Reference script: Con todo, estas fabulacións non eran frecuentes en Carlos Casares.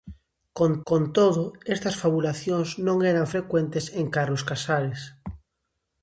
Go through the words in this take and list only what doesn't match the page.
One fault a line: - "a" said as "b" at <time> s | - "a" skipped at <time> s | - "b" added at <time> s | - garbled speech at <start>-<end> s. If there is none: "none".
- "con" added at 0.9 s